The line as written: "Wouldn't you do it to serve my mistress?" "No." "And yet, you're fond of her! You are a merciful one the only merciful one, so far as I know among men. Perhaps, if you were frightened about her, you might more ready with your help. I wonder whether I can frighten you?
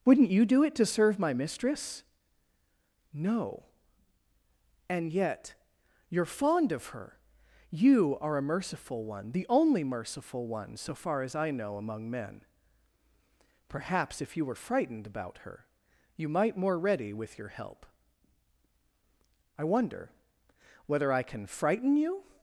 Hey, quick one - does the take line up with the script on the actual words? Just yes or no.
yes